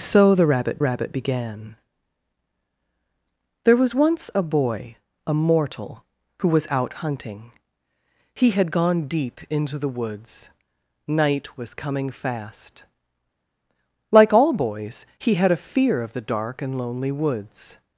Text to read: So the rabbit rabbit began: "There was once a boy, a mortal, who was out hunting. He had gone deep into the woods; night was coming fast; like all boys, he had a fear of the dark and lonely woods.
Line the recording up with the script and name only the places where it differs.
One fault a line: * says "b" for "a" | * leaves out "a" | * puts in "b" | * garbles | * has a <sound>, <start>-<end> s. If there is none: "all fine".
all fine